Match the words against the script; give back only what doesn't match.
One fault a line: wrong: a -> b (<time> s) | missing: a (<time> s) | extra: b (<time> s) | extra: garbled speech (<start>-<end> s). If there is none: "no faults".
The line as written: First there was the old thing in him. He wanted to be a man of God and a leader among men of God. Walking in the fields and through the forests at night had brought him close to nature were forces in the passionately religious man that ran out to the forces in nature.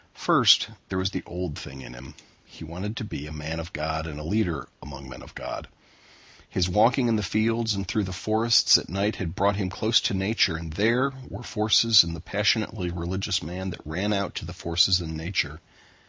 extra: His (6.5 s)
extra: and there (10.6 s)